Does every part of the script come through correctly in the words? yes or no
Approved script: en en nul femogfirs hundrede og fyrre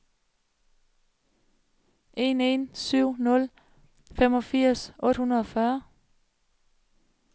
no